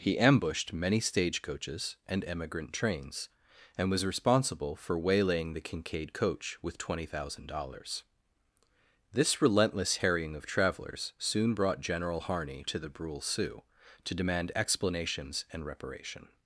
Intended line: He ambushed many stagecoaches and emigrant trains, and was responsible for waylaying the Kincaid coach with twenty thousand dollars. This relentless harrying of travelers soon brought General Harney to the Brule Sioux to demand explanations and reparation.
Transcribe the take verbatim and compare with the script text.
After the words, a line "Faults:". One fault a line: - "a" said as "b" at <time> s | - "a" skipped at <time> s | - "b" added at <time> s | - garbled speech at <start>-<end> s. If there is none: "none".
He ambushed many stagecoaches and emigrant trains, and was responsible for waylaying the Kincaid coach with twenty thousand dollars. This relentless harrying of travelers soon brought General Harney to the Brule Sioux to demand explanations and reparation.
Faults:
none